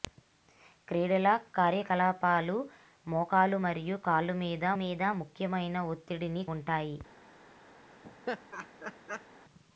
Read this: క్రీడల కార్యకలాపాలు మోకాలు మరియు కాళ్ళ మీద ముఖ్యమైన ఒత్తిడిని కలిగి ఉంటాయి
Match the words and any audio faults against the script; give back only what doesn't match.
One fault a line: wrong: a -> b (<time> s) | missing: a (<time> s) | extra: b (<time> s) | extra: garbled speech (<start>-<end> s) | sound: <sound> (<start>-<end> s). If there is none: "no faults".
extra: మీద (4.8 s)
missing: కలిగి (6.4 s)
sound: laugh (8.0-9.3 s)